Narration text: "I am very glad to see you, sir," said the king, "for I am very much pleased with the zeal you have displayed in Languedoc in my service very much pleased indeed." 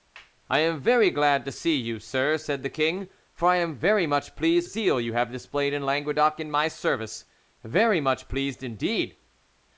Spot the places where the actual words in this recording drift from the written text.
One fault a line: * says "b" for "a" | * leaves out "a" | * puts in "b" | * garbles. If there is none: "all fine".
* leaves out "with the"